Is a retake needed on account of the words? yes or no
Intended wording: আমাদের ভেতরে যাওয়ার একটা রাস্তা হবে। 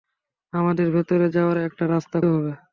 no